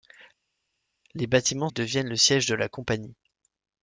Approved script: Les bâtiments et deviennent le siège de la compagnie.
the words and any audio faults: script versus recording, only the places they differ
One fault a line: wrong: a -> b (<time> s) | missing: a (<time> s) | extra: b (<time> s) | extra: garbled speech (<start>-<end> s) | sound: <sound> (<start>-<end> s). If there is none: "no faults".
no faults